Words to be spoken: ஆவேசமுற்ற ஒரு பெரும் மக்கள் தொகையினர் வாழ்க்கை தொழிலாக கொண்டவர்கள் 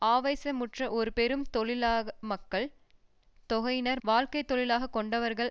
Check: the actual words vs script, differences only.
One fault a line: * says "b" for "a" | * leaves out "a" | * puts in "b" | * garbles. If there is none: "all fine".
all fine